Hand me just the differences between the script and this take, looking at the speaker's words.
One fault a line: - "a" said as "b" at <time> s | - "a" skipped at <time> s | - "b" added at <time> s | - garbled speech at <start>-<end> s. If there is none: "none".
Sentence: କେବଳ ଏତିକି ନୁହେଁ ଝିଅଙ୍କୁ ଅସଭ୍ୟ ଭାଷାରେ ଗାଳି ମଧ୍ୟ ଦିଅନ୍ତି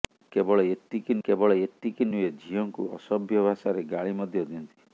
- "କେବଳ ଏତିକି" added at 1.2 s